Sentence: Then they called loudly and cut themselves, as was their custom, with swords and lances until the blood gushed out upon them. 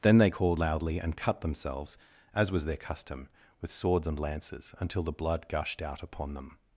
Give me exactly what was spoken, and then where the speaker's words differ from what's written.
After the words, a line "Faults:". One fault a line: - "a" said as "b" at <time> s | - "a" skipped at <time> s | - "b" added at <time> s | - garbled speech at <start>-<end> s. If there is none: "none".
Then they called loudly and cut themselves, as was their custom, with swords and lances until the blood gushed out upon them.
Faults:
none